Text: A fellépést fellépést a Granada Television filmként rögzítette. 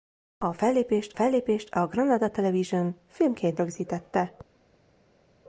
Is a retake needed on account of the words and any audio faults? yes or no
no